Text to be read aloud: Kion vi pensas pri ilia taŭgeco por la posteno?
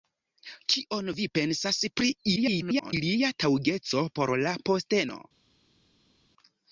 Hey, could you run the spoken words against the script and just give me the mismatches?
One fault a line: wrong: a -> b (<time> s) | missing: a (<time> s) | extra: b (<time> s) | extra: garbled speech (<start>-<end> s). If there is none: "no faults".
extra: garbled speech (2.4-2.9 s)